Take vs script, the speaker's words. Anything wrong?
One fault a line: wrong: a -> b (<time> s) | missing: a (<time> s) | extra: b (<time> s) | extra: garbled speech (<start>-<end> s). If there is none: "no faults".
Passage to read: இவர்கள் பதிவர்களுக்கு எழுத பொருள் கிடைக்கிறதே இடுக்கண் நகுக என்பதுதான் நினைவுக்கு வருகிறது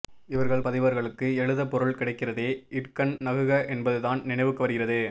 no faults